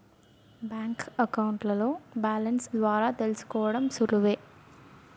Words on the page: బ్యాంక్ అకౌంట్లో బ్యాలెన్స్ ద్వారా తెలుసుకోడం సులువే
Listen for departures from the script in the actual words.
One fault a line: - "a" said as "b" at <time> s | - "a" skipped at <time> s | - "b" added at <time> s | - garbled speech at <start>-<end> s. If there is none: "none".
none